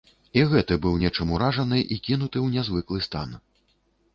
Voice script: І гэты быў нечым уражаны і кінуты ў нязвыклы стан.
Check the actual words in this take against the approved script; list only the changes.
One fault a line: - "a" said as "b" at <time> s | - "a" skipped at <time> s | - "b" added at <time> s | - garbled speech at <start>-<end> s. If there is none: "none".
none